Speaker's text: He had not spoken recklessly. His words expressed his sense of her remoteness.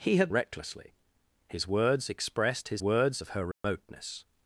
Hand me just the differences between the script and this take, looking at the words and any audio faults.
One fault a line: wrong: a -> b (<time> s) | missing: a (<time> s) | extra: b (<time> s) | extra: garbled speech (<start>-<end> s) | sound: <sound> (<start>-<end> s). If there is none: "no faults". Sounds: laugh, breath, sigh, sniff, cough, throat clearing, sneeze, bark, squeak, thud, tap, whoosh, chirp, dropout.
missing: not spoken (0.3 s)
wrong: sense -> words (2.8 s)
sound: dropout (3.5-3.6 s)